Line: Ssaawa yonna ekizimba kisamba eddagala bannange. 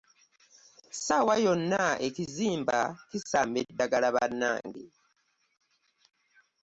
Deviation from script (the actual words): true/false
false